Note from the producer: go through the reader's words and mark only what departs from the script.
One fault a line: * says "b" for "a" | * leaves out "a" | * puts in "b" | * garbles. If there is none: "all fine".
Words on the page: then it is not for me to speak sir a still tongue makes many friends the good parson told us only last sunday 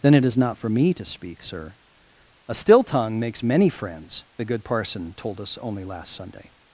all fine